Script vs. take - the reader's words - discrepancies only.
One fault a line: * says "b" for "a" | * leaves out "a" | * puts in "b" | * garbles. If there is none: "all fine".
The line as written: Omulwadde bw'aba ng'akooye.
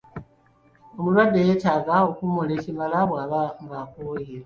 * puts in "yeetaaga okuwummula ekimala"